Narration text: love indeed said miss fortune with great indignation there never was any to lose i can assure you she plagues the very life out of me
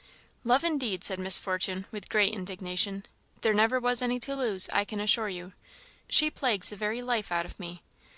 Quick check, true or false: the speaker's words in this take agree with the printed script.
true